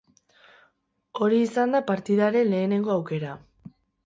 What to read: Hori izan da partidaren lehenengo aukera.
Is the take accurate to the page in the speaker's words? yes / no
yes